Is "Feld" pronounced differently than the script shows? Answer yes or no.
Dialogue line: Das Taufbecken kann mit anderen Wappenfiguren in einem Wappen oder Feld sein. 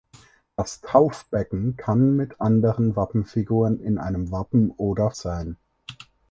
yes